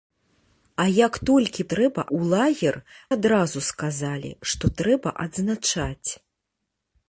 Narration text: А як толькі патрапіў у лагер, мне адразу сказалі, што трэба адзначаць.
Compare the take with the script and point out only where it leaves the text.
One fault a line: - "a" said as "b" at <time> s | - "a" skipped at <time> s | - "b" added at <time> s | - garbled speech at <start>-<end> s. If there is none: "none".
- "патрапіў" said as "трэба" at 1.8 s
- "мне" skipped at 2.8 s